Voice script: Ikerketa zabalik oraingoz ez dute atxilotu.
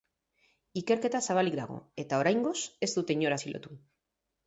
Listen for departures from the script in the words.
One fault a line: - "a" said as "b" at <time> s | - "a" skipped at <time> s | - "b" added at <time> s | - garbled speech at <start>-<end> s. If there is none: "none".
- "dago eta" added at 1.6 s
- "inor" added at 3.2 s